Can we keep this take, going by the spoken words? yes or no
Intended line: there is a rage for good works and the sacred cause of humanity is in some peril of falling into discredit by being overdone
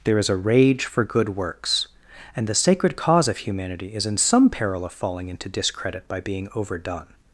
yes